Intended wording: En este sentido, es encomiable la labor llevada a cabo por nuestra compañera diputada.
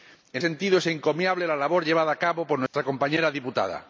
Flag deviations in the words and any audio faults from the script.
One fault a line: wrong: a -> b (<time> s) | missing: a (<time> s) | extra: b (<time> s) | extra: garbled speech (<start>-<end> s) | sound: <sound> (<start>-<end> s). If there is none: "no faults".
missing: este (0.4 s)
sound: dropout (2.7-2.7 s)